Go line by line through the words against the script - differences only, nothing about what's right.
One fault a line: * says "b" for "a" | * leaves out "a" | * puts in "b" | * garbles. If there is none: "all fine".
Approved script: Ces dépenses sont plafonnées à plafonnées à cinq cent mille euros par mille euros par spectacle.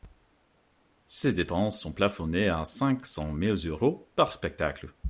* leaves out "plafonnées à"
* leaves out "mille euros par"